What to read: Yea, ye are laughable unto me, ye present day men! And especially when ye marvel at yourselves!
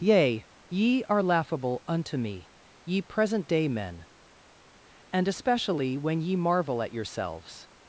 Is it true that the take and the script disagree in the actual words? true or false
false